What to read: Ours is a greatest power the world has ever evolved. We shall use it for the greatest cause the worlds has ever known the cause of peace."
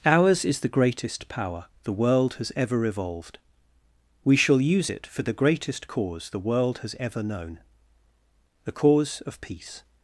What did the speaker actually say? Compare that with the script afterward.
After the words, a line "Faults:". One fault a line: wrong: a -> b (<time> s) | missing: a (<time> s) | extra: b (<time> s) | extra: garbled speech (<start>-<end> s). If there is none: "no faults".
Ours is the greatest power the world has ever evolved. We shall use it for the greatest cause the world has ever known the cause of peace."
Faults:
wrong: a -> the (0.6 s)
wrong: worlds -> world (6.4 s)